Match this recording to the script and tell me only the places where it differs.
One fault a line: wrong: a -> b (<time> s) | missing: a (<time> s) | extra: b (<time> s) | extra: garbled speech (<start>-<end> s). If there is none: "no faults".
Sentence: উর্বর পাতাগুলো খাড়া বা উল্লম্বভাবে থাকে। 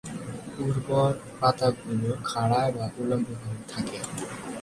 no faults